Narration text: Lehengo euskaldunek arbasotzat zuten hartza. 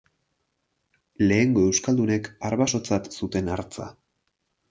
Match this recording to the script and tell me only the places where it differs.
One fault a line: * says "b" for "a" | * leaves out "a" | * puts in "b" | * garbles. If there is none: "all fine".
all fine